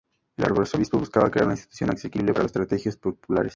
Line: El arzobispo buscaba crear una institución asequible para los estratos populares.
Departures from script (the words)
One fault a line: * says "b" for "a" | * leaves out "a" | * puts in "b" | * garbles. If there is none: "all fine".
all fine